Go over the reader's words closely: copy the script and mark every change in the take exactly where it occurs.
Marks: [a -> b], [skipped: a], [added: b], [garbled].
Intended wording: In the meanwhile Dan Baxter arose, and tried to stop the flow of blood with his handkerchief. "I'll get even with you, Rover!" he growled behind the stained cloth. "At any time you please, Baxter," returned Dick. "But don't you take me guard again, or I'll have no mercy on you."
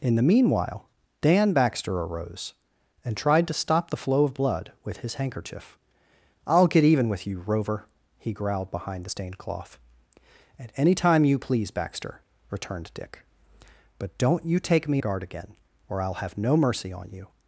In the meanwhile Dan Baxter arose, and tried to stop the flow of blood with his handkerchief. "I'll get even with you, Rover!" he growled behind the stained cloth. "At any time you please, Baxter," returned Dick. "But don't you take me guard again, or I'll have no mercy on you."